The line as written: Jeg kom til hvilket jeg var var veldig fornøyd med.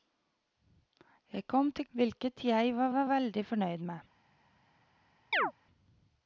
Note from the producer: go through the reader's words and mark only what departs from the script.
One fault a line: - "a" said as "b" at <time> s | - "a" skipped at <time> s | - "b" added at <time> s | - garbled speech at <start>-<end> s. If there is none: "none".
none